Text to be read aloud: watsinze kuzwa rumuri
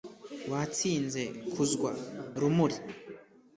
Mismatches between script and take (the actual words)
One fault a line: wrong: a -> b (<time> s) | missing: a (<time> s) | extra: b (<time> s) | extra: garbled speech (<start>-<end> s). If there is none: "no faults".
no faults